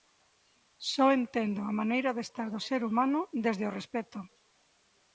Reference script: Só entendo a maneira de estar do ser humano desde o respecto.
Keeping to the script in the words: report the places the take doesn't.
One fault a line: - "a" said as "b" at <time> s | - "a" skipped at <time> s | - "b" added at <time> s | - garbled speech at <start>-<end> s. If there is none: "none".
none